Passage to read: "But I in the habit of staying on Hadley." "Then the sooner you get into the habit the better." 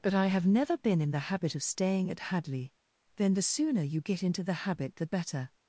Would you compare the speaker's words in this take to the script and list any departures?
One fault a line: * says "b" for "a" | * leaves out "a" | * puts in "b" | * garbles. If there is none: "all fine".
* puts in "have never been"
* says "at" for "on"